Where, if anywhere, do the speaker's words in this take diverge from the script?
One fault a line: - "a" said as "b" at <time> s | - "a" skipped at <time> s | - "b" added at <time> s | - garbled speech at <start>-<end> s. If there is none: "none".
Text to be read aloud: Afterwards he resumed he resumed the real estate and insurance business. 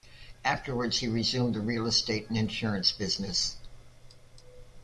- "he resumed" skipped at 1.5 s